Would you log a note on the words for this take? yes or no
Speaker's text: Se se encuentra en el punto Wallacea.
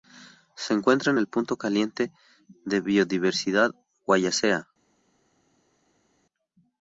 yes